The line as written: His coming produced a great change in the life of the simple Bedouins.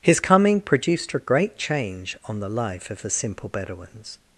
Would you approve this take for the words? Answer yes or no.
no